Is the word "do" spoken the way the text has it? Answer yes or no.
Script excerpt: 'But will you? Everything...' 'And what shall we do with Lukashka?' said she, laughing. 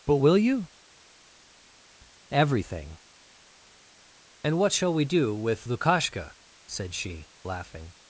yes